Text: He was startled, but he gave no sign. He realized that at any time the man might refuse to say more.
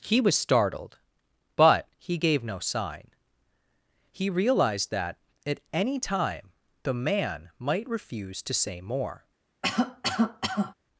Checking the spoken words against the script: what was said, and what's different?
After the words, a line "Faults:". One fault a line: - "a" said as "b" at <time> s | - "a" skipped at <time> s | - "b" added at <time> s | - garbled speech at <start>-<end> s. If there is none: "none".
He was startled, but he gave no sign. He realized that at any time the man might refuse to say more.
Faults:
none